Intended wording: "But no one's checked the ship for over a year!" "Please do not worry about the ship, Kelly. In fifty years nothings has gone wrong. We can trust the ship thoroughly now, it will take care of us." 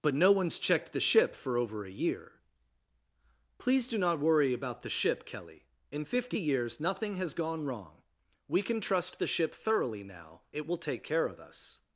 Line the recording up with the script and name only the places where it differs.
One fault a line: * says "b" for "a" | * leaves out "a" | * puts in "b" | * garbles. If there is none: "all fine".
* says "nothing" for "nothings"